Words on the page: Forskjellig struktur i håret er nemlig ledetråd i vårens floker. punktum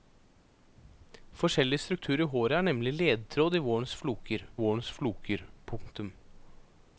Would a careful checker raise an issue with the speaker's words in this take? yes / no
yes